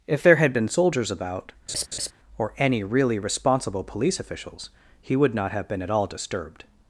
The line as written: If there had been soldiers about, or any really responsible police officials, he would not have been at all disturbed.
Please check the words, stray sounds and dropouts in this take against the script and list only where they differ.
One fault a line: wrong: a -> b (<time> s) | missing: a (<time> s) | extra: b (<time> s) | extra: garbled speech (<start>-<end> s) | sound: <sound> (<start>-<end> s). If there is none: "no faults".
sound: laugh (1.7-2.1 s)